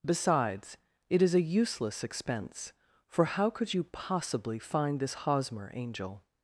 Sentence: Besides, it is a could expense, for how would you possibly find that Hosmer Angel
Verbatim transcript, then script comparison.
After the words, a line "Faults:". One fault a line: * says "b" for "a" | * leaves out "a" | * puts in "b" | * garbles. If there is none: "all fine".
Besides, it is a useless expense, for how could you possibly find this Hosmer Angel
Faults:
* says "useless" for "could"
* says "could" for "would"
* says "this" for "that"